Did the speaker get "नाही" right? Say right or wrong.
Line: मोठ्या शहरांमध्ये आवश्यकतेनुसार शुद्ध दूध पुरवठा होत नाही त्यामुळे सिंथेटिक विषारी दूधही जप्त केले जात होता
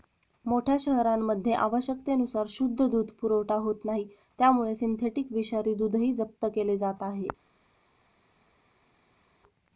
right